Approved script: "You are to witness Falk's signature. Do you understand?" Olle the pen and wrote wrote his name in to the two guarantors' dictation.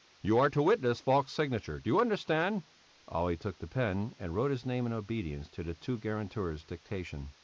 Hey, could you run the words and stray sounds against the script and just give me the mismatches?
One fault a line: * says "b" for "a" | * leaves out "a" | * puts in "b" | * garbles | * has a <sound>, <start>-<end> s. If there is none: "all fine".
* puts in "took"
* leaves out "wrote"
* puts in "obedience"